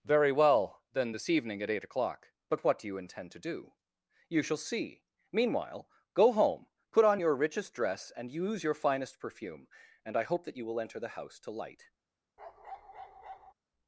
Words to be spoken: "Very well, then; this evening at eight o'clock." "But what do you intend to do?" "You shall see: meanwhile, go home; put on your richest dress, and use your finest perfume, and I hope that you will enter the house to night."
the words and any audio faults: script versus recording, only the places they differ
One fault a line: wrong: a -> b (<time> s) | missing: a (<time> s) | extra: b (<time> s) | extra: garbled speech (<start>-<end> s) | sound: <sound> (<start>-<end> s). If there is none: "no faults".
wrong: night -> light (11.5 s)
sound: bark (12.4-13.5 s)